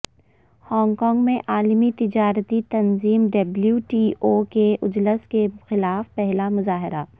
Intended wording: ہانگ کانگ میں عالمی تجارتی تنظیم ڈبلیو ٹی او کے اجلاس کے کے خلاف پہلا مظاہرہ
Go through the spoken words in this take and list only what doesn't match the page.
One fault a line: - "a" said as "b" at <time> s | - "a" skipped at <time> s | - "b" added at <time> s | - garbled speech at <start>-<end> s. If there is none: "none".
- "کے" skipped at 5.5 s